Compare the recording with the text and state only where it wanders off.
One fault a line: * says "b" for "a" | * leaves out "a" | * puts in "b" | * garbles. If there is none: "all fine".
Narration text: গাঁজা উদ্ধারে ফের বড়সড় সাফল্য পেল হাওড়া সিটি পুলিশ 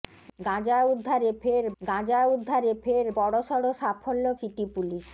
* puts in "গাঁজা উদ্ধারে ফের"
* leaves out "পেল হাওড়া"